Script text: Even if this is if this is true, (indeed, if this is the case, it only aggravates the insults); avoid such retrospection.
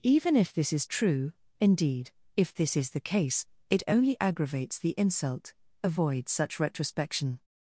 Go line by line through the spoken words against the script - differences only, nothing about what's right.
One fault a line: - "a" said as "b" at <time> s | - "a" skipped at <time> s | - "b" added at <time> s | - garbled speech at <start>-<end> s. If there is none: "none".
- "if this is" skipped at 0.9 s
- "insults" said as "insult" at 4.9 s